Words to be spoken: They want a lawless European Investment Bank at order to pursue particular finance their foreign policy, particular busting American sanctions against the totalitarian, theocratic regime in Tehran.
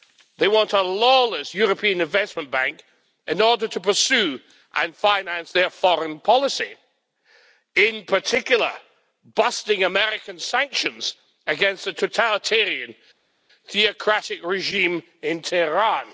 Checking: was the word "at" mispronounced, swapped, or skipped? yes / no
yes